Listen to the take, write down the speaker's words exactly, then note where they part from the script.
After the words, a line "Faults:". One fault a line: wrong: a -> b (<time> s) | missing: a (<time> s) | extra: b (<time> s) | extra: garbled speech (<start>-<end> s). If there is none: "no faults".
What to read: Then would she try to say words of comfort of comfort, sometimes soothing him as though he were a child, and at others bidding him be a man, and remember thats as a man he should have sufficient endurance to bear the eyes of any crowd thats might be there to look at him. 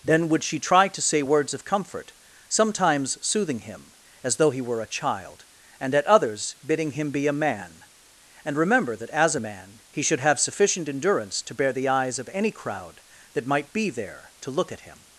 Then would she try to say words of comfort, sometimes soothing him as though he were a child, and at others bidding him be a man, and remember that as a man he should have sufficient endurance to bear the eyes of any crowd that might be there to look at him.
Faults:
missing: of comfort (2.1 s)
wrong: thats -> that (9.0 s)
wrong: thats -> that (13.3 s)